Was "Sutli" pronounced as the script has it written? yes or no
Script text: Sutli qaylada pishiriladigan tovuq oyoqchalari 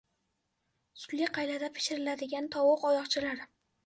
yes